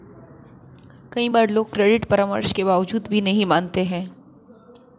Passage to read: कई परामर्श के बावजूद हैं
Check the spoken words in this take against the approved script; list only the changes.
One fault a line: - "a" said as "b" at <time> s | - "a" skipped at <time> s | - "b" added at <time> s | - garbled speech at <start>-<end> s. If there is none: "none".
- "बार लोग क्रेडिट" added at 1.3 s
- "भी नहीं मानते" added at 3.1 s